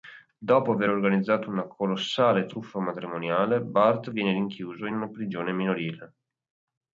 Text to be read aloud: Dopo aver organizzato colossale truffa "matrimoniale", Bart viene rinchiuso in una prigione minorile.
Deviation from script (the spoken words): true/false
true